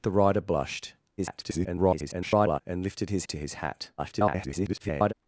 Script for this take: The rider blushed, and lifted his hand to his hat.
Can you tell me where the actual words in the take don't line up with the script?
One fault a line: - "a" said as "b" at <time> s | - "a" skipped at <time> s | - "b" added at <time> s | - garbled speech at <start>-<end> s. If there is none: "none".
- garbled speech at 1.2-2.6 s
- "hand" skipped at 3.3 s
- garbled speech at 4.0-5.1 s